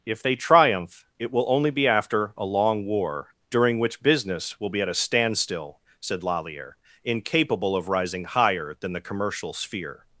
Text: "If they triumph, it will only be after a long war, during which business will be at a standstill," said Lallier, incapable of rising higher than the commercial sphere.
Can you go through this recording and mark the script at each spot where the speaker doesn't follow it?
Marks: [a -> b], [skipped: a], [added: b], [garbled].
"If they triumph, it will only be after a long war, during which business will be at a standstill," said Lallier, incapable of rising higher than the commercial sphere.